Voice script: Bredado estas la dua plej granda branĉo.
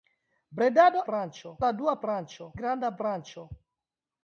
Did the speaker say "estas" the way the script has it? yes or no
no